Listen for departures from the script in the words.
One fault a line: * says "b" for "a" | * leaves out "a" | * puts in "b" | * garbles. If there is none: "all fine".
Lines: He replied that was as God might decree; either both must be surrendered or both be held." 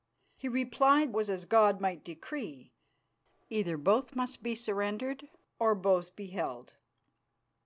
* leaves out "that"